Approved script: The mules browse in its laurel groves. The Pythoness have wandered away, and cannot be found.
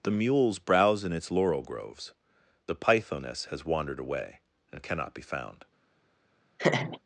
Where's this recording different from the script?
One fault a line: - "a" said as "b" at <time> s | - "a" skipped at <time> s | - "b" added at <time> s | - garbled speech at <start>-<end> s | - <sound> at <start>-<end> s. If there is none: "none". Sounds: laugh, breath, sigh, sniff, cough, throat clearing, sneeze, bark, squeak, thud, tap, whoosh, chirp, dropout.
- "have" said as "has" at 3.5 s
- laugh at 6.6-7.0 s